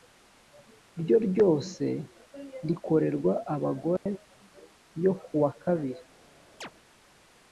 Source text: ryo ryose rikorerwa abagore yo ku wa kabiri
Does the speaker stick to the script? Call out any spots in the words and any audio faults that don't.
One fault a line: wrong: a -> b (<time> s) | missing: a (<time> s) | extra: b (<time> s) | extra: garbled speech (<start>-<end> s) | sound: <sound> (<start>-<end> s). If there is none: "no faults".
sound: dropout (4.0-4.1 s)
sound: chirp (6.6-6.7 s)